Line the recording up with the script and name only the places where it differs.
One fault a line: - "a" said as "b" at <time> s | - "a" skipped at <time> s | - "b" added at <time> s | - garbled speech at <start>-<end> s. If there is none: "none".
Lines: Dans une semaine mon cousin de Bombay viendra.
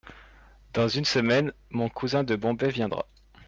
none